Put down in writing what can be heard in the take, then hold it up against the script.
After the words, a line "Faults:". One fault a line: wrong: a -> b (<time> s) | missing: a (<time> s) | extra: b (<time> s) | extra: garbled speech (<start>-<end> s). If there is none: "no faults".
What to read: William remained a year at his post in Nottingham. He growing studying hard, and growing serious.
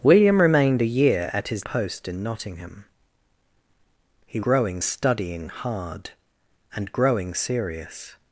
William remained a year at his post in Nottingham. He growing studying hard, and growing serious.
Faults:
no faults